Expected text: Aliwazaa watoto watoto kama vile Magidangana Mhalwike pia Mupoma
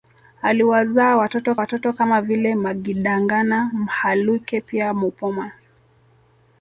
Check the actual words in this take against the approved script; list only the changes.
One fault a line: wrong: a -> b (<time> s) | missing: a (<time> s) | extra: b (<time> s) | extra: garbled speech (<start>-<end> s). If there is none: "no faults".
no faults